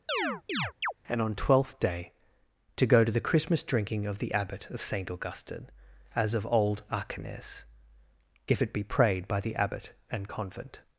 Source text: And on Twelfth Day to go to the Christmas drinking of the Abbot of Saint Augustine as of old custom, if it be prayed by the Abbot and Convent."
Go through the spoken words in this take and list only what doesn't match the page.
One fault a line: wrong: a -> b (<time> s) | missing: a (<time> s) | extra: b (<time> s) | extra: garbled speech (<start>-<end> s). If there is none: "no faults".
wrong: custom -> achenes (6.9 s)